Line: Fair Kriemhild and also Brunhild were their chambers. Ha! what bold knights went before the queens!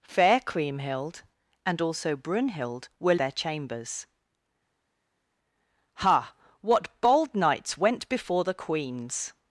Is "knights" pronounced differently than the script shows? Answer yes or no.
no